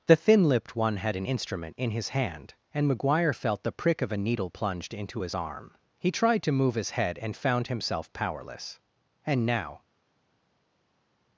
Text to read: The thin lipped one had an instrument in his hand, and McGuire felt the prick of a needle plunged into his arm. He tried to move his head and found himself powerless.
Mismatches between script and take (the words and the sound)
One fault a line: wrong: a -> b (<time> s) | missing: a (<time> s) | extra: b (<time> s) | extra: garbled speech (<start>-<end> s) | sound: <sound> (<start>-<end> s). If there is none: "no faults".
extra: And now (9.3 s)